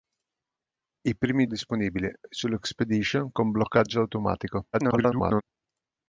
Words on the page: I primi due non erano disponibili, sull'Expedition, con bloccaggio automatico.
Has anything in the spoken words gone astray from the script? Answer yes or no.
yes